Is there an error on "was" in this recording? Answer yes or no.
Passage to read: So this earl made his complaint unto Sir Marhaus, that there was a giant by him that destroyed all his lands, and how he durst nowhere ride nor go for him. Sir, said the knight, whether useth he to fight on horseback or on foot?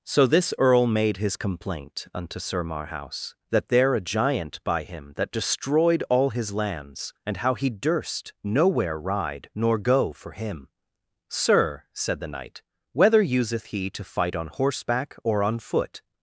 yes